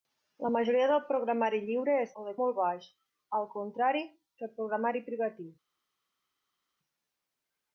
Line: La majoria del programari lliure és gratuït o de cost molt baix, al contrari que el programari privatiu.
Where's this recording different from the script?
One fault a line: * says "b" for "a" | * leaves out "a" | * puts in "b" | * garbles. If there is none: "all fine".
* leaves out "gratuït"
* leaves out "cost"